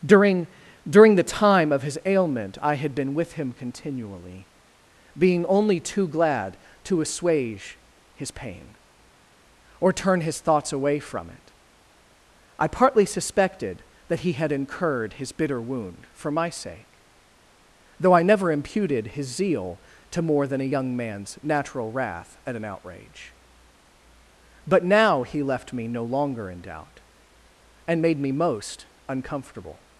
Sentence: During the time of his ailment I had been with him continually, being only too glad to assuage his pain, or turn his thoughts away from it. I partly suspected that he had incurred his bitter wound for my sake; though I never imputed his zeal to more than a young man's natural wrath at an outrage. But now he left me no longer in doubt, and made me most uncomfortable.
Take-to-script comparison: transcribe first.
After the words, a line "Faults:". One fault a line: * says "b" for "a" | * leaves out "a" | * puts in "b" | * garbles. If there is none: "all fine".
During during the time of his ailment I had been with him continually, being only too glad to assuage his pain, or turn his thoughts away from it. I partly suspected that he had incurred his bitter wound for my sake; though I never imputed his zeal to more than a young man's natural wrath at an outrage. But now he left me no longer in doubt, and made me most uncomfortable.
Faults:
* puts in "during"